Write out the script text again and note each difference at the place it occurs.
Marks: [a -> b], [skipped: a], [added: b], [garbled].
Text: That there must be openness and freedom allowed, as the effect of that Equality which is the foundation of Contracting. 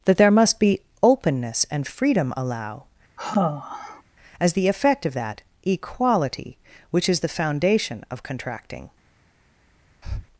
That there must be openness and freedom [allowed, -> allow] as the effect of that Equality which is the foundation of Contracting.